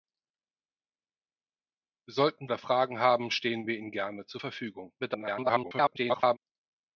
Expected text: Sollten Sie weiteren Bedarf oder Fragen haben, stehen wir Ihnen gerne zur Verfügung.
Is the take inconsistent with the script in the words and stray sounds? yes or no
yes